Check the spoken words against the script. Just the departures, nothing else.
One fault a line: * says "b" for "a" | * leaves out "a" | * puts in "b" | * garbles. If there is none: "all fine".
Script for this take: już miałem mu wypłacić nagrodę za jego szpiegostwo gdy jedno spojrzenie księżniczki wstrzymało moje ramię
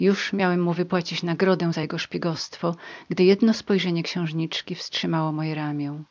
all fine